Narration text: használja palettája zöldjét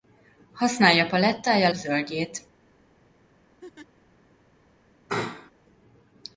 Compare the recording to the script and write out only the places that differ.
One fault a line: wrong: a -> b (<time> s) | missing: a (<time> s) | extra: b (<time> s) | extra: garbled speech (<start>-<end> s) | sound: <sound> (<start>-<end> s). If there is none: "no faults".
sound: laugh (3.6-3.9 s)
sound: sneeze (5.1-5.5 s)